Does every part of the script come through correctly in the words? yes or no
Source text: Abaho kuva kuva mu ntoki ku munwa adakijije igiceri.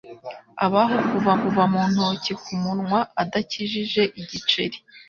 yes